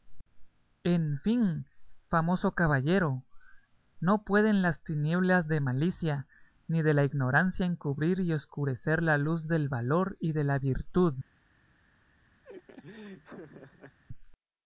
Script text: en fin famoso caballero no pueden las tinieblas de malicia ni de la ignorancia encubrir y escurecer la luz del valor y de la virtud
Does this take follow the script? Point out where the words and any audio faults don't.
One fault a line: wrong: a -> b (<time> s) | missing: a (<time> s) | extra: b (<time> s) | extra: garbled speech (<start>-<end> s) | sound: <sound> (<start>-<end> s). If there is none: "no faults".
sound: laugh (12.4-14.0 s)